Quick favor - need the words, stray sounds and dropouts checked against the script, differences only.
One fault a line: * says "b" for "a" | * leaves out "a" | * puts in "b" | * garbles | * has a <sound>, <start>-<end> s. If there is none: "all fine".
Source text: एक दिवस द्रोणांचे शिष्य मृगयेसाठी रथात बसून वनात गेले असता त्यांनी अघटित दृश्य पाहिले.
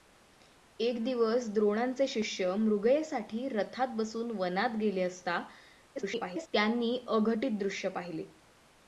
* garbles